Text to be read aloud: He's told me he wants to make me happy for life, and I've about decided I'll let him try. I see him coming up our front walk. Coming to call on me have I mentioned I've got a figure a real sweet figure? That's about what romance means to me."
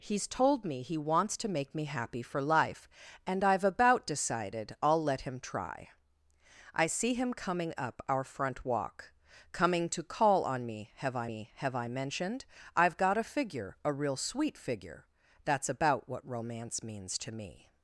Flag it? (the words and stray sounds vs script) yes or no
yes